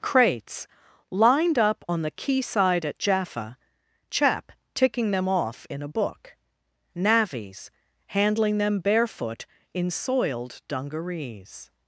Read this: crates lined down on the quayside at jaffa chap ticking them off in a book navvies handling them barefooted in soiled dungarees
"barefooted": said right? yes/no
no